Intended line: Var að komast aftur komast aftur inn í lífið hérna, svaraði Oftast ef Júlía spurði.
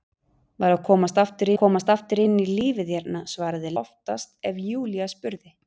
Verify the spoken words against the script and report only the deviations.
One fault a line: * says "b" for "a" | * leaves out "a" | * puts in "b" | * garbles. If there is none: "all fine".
all fine